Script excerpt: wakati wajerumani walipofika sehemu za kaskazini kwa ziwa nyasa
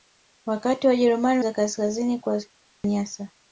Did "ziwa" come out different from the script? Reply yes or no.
yes